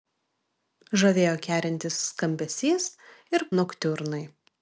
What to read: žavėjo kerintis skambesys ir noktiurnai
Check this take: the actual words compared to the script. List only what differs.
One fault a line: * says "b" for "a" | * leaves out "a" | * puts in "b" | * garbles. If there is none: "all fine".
all fine